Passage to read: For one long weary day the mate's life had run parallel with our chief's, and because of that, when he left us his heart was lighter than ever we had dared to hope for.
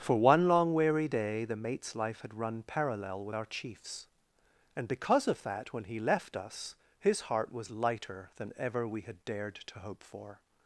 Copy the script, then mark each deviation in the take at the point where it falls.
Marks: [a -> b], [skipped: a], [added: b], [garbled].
For one long weary day the mate's life had run parallel with our chief's, and because of that, when he left us his heart was lighter than ever we had dared to hope for.